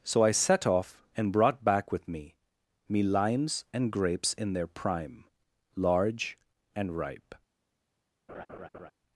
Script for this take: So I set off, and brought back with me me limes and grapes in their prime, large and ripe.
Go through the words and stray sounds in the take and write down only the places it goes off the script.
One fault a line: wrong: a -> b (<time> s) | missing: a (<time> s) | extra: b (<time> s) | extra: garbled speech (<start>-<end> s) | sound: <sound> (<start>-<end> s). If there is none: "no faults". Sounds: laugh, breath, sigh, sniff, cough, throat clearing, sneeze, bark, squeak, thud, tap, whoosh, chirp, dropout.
sound: laugh (8.3-8.9 s)